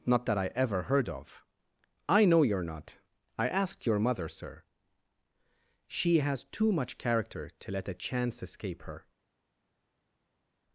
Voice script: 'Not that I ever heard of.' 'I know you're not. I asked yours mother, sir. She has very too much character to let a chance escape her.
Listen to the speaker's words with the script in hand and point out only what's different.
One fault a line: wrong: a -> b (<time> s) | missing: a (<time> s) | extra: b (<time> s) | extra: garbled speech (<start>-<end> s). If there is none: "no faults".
wrong: yours -> your (3.9 s)
missing: very (6.5 s)